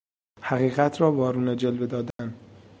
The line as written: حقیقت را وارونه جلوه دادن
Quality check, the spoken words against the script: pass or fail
pass